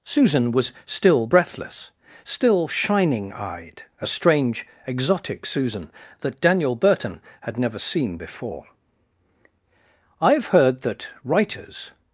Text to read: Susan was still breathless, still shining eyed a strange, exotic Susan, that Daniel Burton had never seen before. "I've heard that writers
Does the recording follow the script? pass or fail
pass